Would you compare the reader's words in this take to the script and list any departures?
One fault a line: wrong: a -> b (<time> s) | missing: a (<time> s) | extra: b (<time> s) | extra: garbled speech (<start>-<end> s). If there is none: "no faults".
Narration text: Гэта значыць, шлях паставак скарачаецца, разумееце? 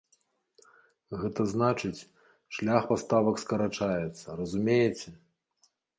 no faults